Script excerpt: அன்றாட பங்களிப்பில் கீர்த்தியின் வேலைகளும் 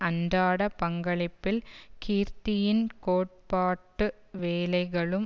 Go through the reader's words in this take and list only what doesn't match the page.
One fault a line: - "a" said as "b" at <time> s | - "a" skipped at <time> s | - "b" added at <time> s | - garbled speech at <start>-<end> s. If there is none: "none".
- "கோட்பாட்டு" added at 3.0 s